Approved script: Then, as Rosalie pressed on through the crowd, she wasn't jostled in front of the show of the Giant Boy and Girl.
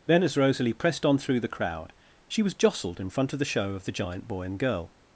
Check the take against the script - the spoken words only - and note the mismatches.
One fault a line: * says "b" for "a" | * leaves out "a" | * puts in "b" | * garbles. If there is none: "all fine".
* says "was" for "wasn't"